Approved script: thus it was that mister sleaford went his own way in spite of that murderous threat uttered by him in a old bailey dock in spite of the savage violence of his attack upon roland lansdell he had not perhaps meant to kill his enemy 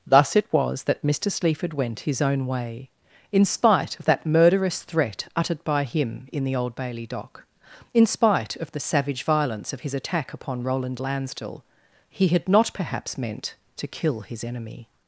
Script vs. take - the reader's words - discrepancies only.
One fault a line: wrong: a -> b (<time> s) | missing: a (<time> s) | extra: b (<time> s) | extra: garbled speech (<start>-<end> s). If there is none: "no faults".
wrong: a -> the (6.4 s)